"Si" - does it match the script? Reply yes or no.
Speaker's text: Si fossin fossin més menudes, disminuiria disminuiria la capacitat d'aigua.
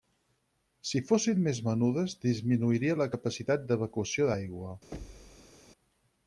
yes